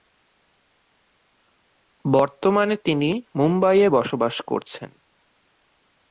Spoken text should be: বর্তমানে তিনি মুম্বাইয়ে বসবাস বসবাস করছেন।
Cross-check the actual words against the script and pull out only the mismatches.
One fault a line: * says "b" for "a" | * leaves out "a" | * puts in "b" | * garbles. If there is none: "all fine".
* leaves out "বসবাস"